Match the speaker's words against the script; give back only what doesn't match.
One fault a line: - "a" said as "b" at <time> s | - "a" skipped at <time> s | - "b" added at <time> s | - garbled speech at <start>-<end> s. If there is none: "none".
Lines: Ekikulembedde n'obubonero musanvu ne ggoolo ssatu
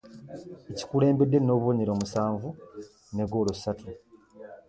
none